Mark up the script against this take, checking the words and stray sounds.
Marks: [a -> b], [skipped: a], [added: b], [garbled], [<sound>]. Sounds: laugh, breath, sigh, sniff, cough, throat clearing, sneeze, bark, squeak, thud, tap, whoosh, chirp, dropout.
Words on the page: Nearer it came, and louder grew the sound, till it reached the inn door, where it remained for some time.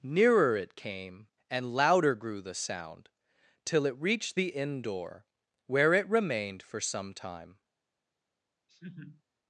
Nearer it came, and louder grew the sound, till it reached the inn door, where it remained for some time. [laugh]